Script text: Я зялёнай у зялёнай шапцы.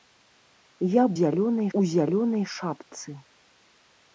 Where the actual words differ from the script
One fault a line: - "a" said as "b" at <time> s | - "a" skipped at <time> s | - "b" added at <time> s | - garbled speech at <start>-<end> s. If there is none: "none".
none